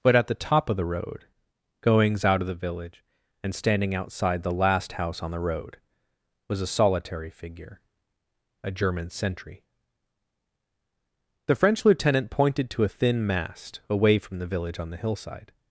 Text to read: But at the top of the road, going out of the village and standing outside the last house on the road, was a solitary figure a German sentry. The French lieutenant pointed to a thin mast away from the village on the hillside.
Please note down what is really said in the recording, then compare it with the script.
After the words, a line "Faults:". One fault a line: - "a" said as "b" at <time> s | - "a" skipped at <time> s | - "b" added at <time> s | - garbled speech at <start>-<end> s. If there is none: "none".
But at the top of the road, goings out of the village and standing outside the last house on the road, was a solitary figure a German sentry. The French lieutenant pointed to a thin mast away from the village on the hillside.
Faults:
- "going" said as "goings" at 1.8 s